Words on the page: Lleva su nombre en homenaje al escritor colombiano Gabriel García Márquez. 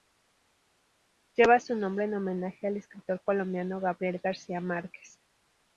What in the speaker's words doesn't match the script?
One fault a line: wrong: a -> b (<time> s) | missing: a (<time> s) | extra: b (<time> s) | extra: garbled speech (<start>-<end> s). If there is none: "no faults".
no faults